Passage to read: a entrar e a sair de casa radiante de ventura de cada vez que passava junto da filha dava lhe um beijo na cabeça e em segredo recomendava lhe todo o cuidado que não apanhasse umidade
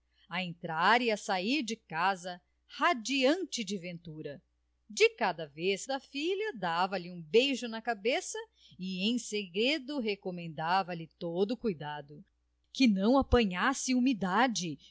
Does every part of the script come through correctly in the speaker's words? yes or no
no